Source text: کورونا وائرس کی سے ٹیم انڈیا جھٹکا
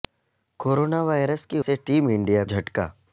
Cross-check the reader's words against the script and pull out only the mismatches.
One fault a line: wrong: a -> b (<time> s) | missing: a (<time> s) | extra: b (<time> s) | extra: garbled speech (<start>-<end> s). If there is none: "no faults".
no faults